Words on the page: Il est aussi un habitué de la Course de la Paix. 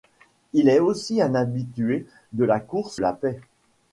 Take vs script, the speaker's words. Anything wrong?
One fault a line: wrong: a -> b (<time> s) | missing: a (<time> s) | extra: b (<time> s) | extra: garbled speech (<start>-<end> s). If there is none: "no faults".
missing: de (3.0 s)